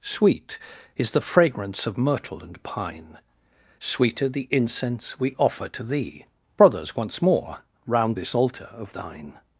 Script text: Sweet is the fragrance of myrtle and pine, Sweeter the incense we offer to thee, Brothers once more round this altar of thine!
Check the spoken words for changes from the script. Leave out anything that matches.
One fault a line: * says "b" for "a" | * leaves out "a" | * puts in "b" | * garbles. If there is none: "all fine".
all fine